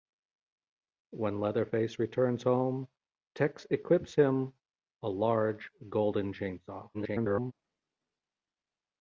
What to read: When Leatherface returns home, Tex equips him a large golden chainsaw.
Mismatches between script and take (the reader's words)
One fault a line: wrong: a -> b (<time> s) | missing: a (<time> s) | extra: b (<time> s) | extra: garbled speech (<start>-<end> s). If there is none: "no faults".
extra: garbled speech (6.9-7.5 s)